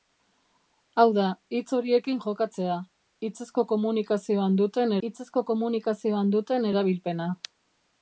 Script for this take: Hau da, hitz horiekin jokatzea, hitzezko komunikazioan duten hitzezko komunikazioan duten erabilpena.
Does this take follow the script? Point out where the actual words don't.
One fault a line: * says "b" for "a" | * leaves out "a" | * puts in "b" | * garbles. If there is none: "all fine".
all fine